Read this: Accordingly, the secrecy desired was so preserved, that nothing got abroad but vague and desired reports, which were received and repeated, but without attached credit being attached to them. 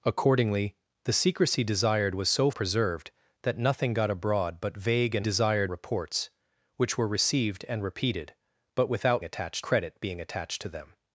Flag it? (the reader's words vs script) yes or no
no